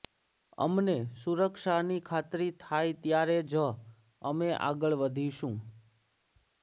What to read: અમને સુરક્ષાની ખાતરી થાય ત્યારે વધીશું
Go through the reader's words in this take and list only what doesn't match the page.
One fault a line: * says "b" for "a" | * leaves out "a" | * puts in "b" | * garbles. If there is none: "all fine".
* puts in "જ અમે આગળ"